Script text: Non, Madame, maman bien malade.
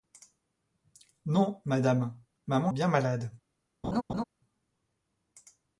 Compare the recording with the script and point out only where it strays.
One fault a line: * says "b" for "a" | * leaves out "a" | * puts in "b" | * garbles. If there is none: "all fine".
all fine